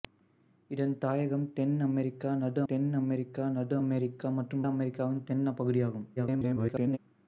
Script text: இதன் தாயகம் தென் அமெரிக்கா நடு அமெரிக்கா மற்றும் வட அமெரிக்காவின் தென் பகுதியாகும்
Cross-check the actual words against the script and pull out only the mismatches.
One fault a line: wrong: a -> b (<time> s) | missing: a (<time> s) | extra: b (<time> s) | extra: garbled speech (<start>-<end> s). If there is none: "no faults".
extra: தென் (2.7 s)
extra: நடு அமெரிக்கா (3.5 s)
missing: வட (4.7 s)
extra: garbled speech (6.2-7.0 s)